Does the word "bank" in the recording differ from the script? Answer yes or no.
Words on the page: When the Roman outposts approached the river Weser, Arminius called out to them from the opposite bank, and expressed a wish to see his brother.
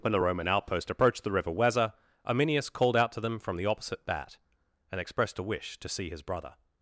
yes